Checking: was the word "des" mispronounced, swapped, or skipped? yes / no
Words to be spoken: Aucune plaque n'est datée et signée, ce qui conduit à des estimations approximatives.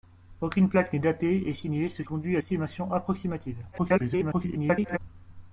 yes